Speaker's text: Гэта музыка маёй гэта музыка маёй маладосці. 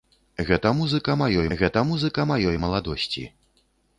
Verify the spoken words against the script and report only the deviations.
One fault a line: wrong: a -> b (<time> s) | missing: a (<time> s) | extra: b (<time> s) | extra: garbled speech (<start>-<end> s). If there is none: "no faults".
no faults